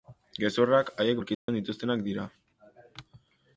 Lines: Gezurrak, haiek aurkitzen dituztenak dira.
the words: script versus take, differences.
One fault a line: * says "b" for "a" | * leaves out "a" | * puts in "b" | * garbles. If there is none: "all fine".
all fine